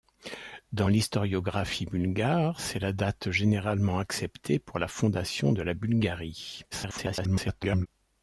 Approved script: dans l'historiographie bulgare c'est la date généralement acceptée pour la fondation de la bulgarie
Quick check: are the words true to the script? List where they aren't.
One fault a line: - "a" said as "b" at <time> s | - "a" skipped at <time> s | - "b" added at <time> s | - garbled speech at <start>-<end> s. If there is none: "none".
- garbled speech at 6.7-7.9 s